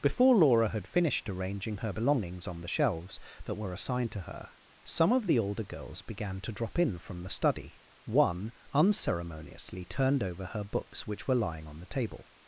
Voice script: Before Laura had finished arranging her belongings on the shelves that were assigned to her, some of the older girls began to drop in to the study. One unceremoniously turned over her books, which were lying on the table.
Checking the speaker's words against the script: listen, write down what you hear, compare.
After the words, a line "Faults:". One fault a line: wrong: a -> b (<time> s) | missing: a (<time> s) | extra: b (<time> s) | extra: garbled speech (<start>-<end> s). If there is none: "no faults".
Before Laura had finished arranging her belongings on the shelves that were assigned to her, some of the older girls began to drop in from the study. One unceremoniously turned over her books, which were lying on the table.
Faults:
wrong: to -> from (7.0 s)